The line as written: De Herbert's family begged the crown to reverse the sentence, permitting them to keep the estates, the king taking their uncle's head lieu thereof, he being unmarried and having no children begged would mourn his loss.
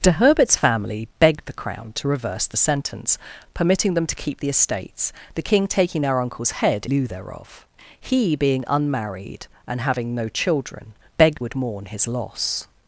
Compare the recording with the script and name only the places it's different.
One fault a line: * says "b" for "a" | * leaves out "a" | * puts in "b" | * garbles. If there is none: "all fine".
all fine